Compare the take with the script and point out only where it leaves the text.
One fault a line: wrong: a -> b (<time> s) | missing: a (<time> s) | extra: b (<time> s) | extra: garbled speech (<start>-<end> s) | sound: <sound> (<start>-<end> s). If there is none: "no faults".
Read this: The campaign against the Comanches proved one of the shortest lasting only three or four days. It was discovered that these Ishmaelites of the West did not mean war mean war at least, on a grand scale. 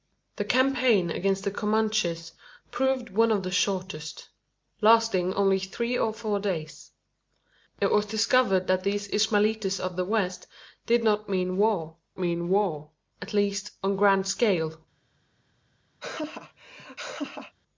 sound: laugh (16.0-17.5 s)